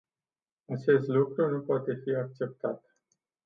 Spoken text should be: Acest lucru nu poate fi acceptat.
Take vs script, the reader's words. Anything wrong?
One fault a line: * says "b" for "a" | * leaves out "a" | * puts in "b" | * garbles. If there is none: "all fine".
all fine